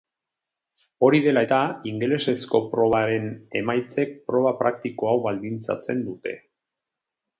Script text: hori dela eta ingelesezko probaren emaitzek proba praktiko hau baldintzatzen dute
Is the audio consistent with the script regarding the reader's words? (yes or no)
yes